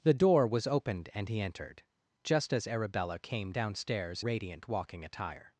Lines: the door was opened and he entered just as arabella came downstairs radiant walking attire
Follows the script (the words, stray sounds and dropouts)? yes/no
yes